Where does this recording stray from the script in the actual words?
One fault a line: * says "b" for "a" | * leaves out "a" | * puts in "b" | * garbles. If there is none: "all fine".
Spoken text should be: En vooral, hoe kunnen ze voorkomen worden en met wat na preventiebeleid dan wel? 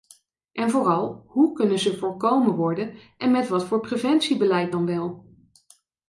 * says "voor" for "na"